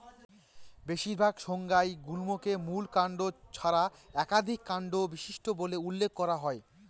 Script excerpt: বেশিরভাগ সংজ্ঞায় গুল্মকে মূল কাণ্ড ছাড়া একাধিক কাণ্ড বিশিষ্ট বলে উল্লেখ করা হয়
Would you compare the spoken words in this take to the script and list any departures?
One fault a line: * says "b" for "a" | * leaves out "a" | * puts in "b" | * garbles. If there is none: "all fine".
all fine